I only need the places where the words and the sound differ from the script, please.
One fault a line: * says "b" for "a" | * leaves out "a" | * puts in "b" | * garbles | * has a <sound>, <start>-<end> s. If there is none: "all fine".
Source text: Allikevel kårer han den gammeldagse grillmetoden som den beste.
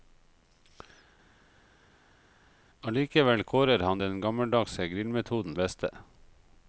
* leaves out "som den"